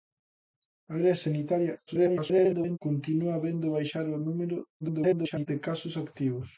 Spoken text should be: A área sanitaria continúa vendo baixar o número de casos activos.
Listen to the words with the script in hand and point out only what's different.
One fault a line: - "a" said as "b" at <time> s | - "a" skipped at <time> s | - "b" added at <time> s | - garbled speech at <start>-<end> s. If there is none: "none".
- garbled speech at 1.9-2.8 s
- garbled speech at 4.8-5.5 s